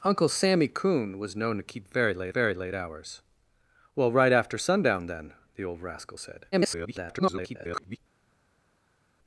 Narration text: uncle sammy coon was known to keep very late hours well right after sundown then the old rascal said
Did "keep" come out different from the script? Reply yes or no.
no